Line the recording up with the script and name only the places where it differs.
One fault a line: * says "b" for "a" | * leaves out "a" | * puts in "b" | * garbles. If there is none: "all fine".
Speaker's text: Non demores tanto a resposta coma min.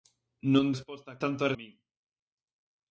* says "resposta" for "demores"
* leaves out "resposta coma"